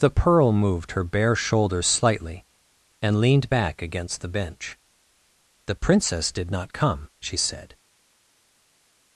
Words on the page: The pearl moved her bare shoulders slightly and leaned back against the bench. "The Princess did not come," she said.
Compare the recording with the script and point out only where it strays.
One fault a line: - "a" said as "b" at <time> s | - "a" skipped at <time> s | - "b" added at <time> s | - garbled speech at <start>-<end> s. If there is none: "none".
none